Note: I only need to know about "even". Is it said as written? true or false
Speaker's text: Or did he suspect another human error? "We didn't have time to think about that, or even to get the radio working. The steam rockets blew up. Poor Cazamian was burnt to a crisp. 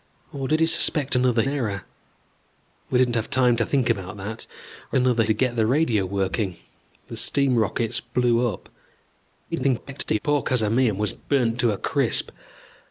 false